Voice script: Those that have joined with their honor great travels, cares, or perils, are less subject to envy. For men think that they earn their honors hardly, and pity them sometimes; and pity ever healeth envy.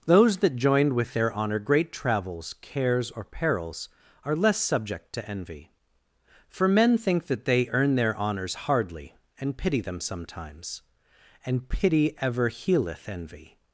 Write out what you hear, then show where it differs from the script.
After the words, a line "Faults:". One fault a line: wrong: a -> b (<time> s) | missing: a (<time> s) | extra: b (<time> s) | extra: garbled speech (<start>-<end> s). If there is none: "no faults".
Those that joined with their honor great travels, cares, or perils, are less subject to envy. For men think that they earn their honors hardly, and pity them sometimes; and pity ever healeth envy.
Faults:
missing: have (0.6 s)